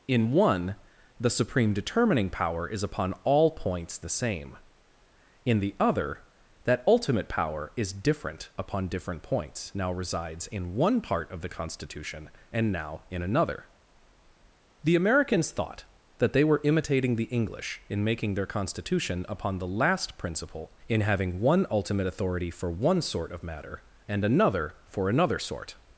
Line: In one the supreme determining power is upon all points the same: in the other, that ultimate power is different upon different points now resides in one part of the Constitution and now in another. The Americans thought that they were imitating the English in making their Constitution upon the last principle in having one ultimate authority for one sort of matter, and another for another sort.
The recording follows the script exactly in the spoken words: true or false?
true